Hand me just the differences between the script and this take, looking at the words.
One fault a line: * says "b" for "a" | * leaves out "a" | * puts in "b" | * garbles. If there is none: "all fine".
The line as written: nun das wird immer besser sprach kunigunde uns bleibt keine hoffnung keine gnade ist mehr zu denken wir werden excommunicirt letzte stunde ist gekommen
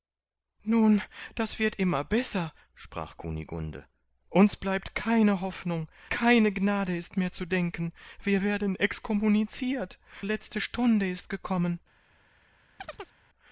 all fine